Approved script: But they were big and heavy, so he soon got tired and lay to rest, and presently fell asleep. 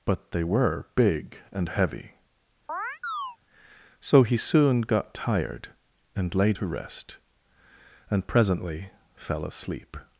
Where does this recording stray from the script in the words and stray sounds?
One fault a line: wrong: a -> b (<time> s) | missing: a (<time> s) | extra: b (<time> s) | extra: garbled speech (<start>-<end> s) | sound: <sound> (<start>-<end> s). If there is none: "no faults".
sound: chirp (2.7-3.4 s)